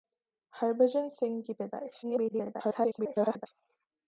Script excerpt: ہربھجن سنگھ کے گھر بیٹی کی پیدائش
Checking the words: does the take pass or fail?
fail